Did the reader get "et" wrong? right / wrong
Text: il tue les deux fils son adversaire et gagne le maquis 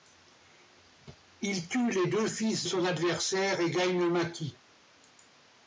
right